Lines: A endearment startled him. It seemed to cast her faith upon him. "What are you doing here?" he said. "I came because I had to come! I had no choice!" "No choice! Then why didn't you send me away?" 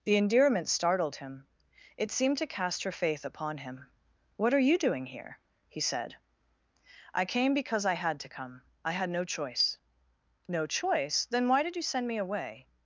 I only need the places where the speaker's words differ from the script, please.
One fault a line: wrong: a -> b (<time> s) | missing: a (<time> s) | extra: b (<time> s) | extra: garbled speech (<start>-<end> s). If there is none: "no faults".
wrong: A -> The (0.0 s)
wrong: didn't -> did (11.6 s)